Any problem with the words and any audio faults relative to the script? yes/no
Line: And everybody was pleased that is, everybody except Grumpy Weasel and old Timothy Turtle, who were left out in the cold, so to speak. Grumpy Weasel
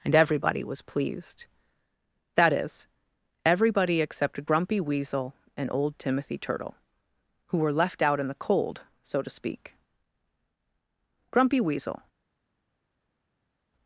no